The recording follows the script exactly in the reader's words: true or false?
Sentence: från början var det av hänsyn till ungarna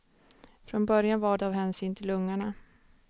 false